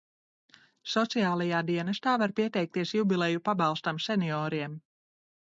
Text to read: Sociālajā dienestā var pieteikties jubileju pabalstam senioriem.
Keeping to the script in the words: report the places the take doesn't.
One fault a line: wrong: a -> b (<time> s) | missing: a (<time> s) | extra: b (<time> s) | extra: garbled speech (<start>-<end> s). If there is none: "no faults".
no faults